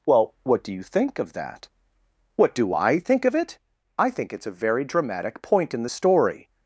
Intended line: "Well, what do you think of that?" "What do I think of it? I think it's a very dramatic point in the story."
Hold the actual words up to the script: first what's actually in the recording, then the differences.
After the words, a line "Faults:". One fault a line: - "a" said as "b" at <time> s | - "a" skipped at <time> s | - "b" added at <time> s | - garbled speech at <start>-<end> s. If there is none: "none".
"Well, what do you think of that?" "What do I think of it? I think it's a very dramatic point in the story."
Faults:
none